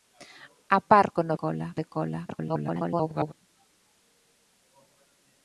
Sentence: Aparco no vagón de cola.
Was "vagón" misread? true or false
true